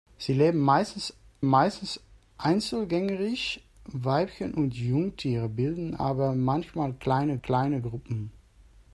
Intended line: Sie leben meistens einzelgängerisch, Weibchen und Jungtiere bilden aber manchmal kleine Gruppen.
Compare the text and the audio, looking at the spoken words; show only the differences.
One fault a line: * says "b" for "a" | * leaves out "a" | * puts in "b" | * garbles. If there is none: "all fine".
* puts in "meistens"
* puts in "kleine"